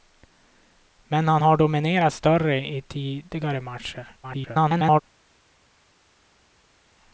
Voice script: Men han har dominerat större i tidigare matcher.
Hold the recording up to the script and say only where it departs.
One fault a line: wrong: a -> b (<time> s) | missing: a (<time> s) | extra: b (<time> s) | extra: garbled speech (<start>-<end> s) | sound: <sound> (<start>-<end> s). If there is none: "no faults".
extra: garbled speech (4.2-5.0 s)